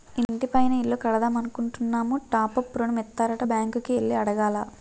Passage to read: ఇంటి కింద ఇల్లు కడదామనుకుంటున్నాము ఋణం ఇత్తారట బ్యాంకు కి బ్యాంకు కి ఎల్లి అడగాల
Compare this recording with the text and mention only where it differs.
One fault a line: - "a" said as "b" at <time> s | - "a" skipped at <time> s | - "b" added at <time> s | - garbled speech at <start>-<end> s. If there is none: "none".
- "కింద" said as "పైన" at 0.5 s
- "టాప్ అప్" added at 2.3 s
- "బ్యాంకు కి" skipped at 3.9 s